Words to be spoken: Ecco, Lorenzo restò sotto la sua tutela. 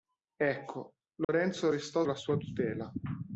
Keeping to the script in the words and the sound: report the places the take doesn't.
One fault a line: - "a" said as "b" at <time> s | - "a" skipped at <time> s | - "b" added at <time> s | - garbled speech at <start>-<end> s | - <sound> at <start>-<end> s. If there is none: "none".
- dropout at 1.2-1.3 s
- "sotto" skipped at 2.0 s